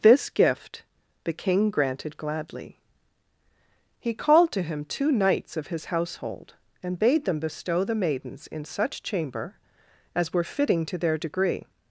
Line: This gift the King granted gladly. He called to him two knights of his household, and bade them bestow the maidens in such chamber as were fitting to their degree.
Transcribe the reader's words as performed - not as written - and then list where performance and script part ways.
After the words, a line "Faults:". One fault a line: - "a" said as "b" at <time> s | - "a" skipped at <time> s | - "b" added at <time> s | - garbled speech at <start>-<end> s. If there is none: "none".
This gift the King granted gladly. He called to him two knights of his household, and bade them bestow the maidens in such chamber as were fitting to their degree.
Faults:
none